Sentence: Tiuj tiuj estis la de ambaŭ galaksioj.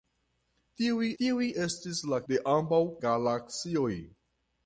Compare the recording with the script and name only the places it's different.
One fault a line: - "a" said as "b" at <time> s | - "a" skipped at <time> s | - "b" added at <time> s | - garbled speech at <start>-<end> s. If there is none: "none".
none